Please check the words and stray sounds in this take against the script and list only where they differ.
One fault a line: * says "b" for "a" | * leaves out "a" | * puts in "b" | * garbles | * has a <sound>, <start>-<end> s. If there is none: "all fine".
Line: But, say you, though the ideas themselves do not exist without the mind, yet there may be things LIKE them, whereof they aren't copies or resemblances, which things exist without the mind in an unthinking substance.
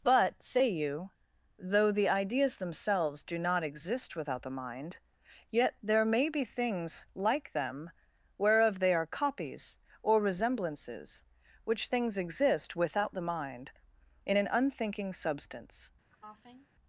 * says "are" for "aren't"
* has a cough, 16.1-16.7 s